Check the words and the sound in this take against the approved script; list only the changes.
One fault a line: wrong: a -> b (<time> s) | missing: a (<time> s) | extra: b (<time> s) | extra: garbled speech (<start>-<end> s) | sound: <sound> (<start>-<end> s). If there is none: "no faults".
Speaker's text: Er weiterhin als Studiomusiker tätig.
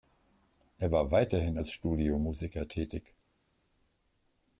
extra: war (0.9 s)